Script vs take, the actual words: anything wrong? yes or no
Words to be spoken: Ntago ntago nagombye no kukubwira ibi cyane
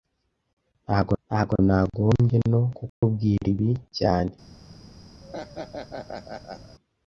no